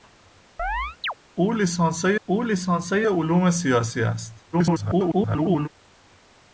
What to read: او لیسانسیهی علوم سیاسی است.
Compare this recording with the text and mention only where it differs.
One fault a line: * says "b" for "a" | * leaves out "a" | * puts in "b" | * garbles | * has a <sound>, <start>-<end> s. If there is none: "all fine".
* has a chirp, 0.6-1.1 s
* puts in "او لیسانسیهی"
* garbles